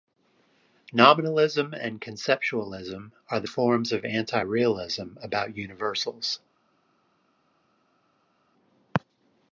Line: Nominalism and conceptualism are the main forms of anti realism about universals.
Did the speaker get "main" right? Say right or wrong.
wrong